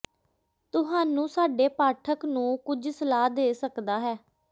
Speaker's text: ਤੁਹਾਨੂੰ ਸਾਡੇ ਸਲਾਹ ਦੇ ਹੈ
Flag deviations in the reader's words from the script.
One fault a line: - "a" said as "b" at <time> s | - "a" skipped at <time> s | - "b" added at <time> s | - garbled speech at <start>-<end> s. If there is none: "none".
- "ਪਾਠਕ ਨੂੰ ਕੁਝ" added at 1.7 s
- "ਸਕਦਾ" added at 3.5 s